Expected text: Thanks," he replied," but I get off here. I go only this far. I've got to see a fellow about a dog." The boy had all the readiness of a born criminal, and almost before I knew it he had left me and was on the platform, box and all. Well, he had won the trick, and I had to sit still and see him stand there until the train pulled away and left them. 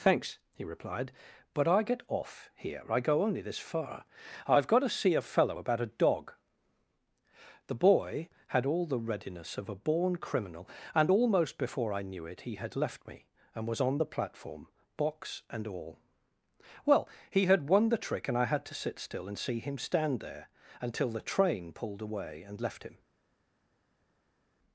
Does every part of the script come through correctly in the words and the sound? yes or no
no